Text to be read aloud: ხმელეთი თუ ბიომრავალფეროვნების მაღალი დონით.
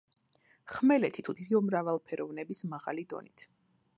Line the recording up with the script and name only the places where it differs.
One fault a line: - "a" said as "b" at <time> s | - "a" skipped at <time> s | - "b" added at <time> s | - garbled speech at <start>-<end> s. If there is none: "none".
none